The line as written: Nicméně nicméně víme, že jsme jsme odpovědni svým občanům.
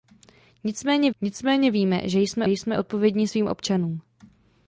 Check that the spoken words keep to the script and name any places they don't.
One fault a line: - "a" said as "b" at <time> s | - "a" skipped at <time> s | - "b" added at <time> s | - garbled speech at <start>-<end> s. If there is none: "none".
none